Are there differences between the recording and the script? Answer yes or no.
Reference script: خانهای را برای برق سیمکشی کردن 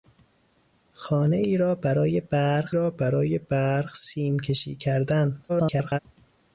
yes